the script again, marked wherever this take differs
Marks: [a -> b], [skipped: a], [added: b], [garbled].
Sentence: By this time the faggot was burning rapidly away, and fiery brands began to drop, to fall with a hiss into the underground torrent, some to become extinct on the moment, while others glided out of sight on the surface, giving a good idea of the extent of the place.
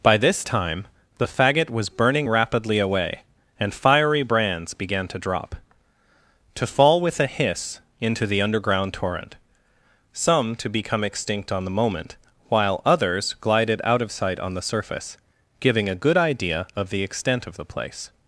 By this time the faggot was burning rapidly away, and fiery brands began to drop, to fall with a hiss into the underground torrent, some to become extinct on the moment, while others glided out of sight on the surface, giving a good idea of the extent of the place.